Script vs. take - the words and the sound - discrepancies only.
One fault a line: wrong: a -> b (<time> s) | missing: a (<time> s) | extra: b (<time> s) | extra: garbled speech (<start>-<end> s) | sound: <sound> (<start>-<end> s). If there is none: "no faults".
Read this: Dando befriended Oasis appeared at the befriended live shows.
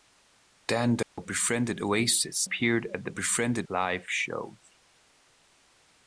sound: dropout (1.0-1.2 s)